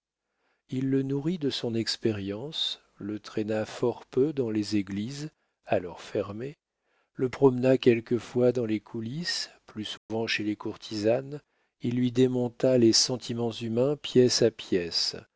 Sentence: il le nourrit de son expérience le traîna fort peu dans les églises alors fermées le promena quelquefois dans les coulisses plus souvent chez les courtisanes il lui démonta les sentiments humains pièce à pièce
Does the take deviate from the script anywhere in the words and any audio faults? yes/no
yes